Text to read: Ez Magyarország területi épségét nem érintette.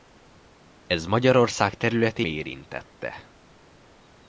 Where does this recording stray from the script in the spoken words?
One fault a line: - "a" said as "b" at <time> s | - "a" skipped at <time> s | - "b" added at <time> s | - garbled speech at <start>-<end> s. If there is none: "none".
- "épségét nem" skipped at 2.2 s